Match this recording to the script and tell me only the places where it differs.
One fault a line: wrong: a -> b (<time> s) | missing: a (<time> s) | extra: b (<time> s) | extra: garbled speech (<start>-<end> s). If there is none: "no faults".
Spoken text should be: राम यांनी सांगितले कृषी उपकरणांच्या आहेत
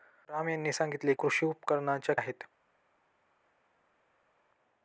no faults